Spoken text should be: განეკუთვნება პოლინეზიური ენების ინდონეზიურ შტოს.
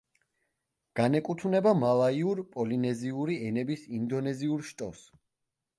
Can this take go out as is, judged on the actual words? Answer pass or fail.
fail